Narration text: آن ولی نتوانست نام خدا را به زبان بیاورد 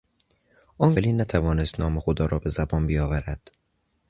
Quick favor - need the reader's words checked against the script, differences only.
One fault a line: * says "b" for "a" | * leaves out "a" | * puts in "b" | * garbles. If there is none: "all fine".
all fine